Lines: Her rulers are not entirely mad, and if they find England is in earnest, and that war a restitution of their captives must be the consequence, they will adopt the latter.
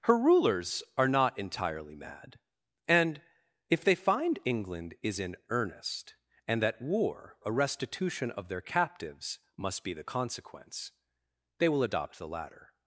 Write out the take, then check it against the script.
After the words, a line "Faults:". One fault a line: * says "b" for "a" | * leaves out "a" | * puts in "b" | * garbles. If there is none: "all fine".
Her rulers are not entirely mad, and if they find England is in earnest, and that war a restitution of their captives must be the consequence, they will adopt the latter.
Faults:
all fine